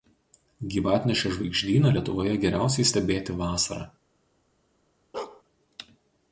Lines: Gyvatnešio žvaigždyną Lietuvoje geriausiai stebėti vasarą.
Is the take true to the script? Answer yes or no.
yes